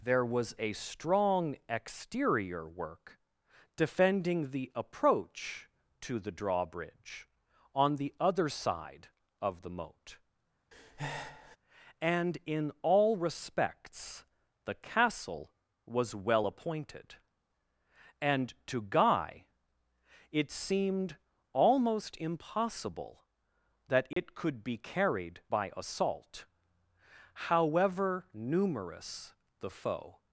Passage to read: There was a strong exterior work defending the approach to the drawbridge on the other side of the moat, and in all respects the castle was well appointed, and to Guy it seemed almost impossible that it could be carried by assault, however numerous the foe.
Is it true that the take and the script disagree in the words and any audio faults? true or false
true